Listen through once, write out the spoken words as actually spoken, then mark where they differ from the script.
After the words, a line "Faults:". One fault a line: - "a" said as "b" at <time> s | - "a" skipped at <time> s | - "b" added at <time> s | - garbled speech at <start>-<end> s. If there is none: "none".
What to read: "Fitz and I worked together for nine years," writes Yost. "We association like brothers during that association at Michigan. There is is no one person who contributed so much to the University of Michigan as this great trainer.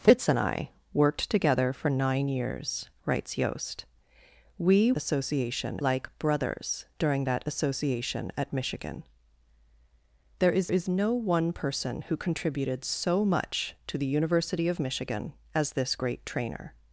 "Fitz and I worked together for nine years," writes Yost. "We association like brothers during that association at Michigan. There is is no one person who contributed so much to the University of Michigan as this great trainer.
Faults:
none